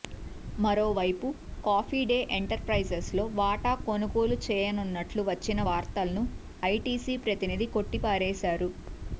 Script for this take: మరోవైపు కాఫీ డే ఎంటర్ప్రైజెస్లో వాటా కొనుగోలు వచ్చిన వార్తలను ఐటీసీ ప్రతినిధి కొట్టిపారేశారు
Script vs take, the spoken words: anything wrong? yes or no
yes